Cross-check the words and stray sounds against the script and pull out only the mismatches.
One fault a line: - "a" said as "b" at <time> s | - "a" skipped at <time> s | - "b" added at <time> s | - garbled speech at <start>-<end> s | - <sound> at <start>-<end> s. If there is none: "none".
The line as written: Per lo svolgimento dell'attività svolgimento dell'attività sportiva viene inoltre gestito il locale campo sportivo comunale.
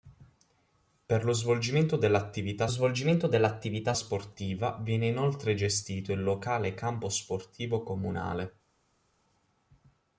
none